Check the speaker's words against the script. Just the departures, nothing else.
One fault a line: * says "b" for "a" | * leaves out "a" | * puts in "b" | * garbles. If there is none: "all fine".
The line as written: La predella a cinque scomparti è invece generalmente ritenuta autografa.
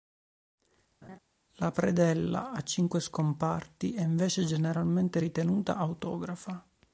all fine